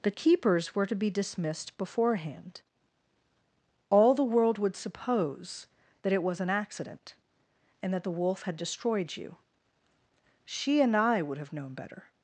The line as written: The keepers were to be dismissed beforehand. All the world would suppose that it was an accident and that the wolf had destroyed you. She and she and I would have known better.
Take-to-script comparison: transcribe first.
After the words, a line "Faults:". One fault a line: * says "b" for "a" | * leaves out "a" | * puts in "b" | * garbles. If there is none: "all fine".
The keepers were to be dismissed beforehand. All the world would suppose that it was an accident and that the wolf had destroyed you. She and I would have known better.
Faults:
* leaves out "she and"